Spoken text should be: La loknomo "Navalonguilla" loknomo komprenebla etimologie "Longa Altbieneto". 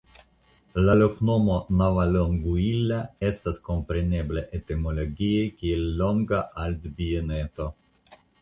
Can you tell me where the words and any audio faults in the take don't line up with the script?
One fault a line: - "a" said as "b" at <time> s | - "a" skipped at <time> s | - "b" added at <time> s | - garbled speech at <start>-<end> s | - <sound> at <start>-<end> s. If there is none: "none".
- "loknomo" said as "estas" at 3.3 s
- "kiel" added at 5.6 s